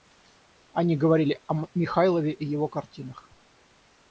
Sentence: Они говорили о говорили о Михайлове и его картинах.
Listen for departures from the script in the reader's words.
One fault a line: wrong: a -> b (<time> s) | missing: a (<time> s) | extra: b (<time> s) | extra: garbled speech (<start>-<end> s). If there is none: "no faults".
missing: говорили о (1.6 s)